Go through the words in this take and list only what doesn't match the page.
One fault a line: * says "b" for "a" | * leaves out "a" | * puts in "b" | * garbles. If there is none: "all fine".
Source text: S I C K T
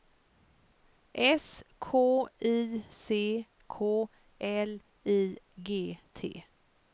* puts in "K"
* puts in "L I G"